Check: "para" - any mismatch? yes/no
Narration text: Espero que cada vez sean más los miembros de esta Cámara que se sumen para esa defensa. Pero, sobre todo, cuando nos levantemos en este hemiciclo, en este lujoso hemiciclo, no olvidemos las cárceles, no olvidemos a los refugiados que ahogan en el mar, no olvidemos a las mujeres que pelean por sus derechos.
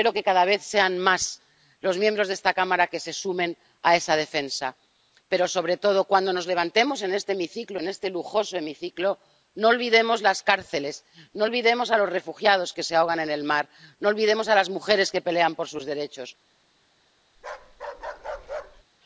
yes